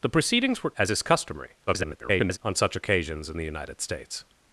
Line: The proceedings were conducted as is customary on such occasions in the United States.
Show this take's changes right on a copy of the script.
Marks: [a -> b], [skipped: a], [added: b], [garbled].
The proceedings were [skipped: conducted] as is customary [garbled] on such occasions in the United States.